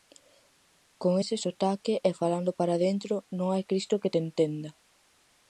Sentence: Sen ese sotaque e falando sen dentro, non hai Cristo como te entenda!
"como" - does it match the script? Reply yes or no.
no